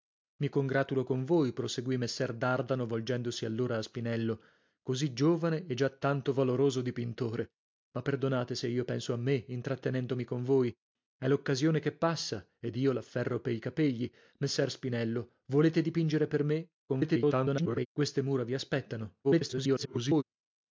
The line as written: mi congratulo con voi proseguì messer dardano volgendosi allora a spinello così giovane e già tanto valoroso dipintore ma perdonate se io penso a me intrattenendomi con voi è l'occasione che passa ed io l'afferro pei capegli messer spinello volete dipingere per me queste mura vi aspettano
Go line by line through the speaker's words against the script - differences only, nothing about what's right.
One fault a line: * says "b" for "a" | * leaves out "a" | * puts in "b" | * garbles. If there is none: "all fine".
* garbles
* garbles